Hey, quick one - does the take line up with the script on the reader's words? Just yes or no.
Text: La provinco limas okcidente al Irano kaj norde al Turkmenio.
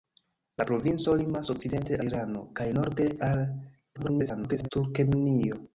no